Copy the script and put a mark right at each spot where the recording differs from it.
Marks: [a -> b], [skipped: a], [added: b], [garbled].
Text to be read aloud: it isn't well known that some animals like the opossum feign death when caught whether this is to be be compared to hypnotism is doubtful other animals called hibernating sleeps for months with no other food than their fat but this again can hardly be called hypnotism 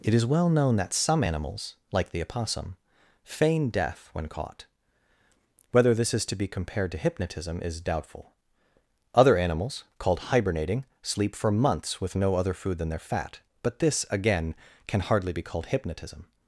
it [isn't -> is] well known that some animals like the opossum feign death when caught whether this is to be [skipped: be] compared to hypnotism is doubtful other animals called hibernating [sleeps -> sleep] for months with no other food than their fat but this again can hardly be called hypnotism